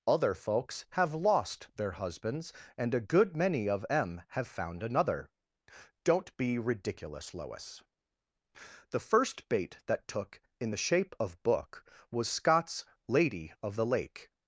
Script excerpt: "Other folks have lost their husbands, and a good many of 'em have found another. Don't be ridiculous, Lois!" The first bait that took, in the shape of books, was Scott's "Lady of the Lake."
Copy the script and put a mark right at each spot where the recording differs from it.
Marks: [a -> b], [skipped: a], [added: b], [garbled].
"Other folks have lost their husbands, and a good many of 'em have found another. Don't be ridiculous, Lois!" The first bait that took, in the shape of [books, -> book] was Scott's "Lady of the Lake."